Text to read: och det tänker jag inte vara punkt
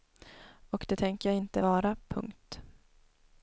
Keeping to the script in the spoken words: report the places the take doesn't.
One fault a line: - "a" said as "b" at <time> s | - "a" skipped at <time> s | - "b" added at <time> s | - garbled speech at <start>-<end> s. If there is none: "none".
none